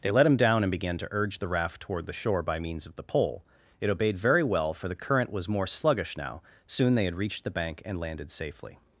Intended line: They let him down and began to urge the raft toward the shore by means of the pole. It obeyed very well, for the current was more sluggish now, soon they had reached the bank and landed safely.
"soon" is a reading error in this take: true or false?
false